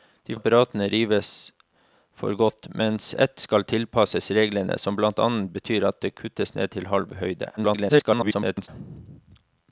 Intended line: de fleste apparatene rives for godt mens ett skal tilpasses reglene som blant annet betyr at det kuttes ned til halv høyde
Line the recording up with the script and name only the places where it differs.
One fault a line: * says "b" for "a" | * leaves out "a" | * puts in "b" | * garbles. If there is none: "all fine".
* leaves out "fleste"
* garbles